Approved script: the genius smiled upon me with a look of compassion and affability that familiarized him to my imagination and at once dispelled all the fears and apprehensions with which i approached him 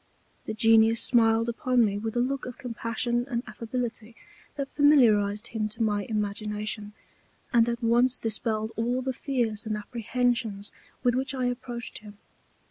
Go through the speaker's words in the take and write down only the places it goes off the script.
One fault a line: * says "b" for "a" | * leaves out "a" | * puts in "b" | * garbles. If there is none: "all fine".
all fine